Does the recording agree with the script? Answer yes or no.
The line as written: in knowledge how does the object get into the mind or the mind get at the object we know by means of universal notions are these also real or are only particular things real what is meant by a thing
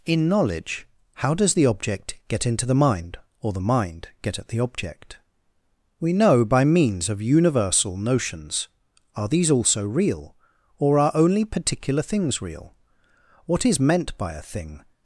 yes